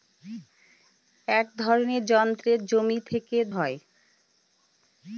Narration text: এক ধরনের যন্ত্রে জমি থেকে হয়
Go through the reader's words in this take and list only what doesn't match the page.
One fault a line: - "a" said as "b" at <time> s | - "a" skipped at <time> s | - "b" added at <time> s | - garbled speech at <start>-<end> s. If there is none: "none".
none